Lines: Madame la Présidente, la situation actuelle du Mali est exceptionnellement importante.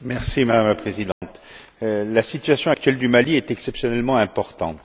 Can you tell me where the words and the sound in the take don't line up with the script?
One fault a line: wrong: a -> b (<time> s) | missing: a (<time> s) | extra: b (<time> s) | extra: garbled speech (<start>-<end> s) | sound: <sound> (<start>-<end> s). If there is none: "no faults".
sound: dropout (1.1-1.2 s)